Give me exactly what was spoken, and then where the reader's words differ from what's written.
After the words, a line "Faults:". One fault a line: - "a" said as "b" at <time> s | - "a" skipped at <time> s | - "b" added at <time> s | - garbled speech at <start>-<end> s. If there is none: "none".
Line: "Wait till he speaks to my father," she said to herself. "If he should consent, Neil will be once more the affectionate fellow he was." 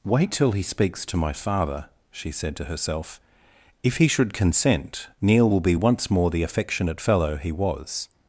"Wait till he speaks to my father," she said to herself. "If he should consent, Neil will be once more the affectionate fellow he was."
Faults:
none